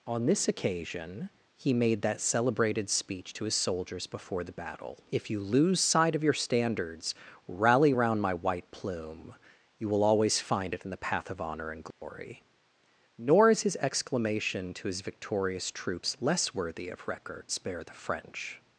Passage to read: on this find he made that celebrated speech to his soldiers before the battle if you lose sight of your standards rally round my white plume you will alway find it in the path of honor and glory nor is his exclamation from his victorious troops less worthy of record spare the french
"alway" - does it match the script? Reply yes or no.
no